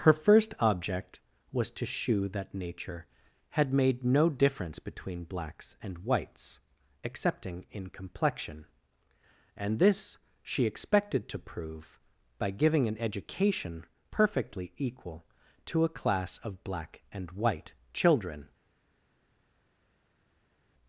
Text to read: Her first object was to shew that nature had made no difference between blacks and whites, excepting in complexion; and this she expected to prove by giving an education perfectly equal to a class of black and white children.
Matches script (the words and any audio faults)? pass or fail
pass